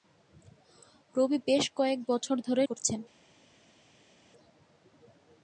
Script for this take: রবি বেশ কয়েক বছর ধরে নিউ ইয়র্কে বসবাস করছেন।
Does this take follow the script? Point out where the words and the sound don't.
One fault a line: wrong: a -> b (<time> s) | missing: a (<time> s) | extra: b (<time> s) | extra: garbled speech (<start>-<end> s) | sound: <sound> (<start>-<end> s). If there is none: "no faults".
missing: নিউ ইয়র্কে বসবাস (2.6 s)